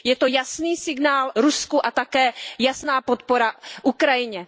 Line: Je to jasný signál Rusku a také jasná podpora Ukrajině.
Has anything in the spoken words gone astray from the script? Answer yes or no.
no